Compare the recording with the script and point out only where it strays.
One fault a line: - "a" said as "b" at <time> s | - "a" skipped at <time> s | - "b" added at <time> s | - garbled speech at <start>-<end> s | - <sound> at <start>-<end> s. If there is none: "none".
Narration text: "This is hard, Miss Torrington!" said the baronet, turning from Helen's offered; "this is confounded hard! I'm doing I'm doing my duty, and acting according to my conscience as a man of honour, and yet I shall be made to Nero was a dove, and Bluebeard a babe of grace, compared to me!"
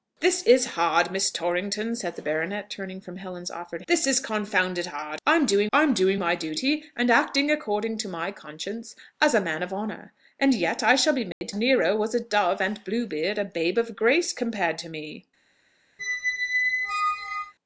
- dropout at 11.3-11.4 s
- squeak at 16.0-17.5 s